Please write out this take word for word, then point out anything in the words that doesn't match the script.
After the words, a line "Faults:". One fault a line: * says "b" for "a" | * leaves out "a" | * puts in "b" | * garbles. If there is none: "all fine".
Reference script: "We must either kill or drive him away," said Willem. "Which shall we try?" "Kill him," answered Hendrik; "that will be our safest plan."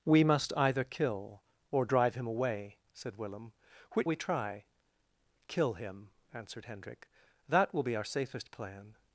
"We must either kill or drive him away," said Willem. "Which we try?" "Kill him," answered Hendrik; "that will be our safest plan."
Faults:
* leaves out "shall"